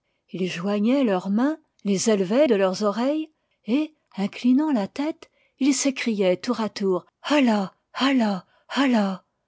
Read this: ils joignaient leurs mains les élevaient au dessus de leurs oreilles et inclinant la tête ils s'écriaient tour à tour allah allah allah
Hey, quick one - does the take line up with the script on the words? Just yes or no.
no